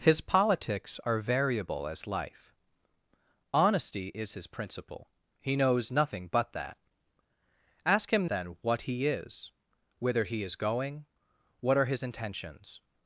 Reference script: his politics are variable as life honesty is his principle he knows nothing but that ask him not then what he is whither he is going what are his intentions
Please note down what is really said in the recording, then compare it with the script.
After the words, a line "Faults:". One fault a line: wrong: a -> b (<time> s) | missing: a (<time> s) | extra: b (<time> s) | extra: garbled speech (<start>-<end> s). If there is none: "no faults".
his politics are variable as life honesty is his principle he knows nothing but that ask him then what he is whither he is going what are his intentions
Faults:
missing: not (8.3 s)